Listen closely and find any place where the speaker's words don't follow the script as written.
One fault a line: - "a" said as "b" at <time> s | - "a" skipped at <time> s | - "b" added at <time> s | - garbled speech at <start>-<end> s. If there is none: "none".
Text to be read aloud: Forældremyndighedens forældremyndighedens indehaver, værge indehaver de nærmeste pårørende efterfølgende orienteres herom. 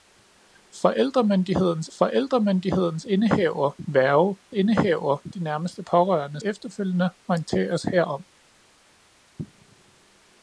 none